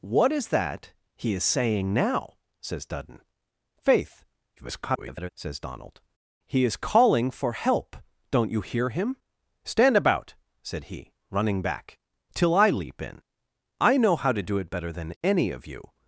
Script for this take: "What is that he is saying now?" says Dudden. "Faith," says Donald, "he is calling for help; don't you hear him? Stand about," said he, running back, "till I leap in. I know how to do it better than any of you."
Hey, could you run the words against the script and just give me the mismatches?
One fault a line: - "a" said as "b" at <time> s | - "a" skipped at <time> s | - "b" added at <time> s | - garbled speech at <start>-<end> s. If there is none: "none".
- garbled speech at 4.6-5.3 s